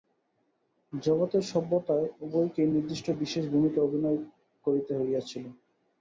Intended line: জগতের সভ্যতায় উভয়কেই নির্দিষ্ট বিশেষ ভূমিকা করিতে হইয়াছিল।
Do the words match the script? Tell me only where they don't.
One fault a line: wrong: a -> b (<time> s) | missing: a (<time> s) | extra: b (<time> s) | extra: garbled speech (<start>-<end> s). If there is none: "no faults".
extra: অভিনয় (3.8 s)